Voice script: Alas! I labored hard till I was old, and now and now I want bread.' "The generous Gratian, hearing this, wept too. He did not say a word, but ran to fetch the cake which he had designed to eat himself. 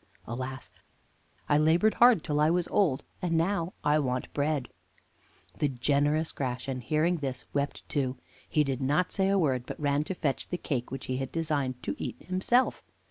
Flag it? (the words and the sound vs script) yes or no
yes